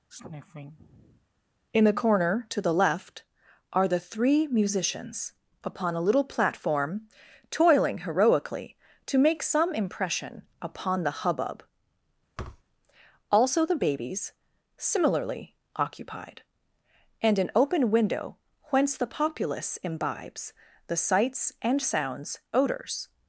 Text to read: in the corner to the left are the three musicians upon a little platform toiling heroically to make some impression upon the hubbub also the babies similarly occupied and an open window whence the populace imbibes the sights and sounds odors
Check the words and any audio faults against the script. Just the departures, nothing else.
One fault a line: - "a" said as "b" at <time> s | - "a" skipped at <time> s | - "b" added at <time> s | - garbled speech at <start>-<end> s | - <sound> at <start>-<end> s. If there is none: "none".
- sniff at 0.1-1.3 s
- thud at 12.4-12.6 s